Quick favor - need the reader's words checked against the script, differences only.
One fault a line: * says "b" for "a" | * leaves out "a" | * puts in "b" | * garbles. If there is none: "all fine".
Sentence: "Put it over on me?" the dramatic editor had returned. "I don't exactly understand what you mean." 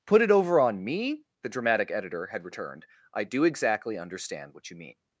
* says "do" for "don't"